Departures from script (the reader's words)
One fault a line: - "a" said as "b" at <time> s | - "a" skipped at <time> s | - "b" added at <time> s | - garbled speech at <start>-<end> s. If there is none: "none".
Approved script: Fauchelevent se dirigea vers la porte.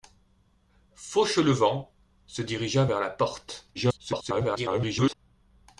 - garbled speech at 3.7-5.2 s